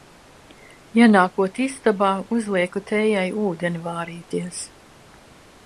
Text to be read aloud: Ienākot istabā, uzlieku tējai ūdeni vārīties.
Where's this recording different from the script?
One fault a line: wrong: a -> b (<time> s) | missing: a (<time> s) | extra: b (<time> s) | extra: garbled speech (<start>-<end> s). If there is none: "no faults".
no faults